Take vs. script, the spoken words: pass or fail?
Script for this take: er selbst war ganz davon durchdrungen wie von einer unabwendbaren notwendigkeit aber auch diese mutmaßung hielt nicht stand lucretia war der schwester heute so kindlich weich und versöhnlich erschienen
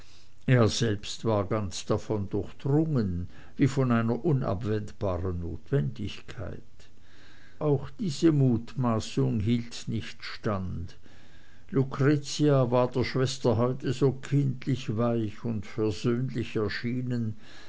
fail